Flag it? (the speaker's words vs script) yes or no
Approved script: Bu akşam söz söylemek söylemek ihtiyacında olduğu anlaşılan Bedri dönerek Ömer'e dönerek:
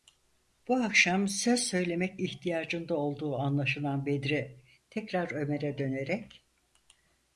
yes